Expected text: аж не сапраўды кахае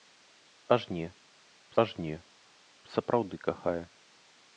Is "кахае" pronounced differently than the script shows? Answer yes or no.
no